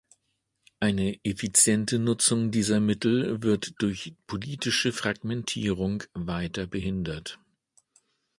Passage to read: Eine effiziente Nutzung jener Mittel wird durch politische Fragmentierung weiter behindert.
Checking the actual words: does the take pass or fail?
fail